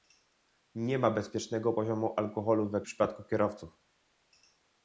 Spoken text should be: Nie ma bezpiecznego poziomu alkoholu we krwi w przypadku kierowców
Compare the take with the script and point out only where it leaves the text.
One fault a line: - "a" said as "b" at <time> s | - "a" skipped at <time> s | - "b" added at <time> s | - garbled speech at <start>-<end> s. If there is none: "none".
- "krwi" skipped at 2.8 s